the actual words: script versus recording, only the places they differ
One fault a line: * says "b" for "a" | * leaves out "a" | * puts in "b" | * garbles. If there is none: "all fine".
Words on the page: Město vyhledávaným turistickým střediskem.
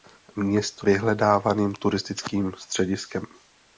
all fine